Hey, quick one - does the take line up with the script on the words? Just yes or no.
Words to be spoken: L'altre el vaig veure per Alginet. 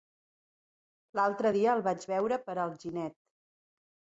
no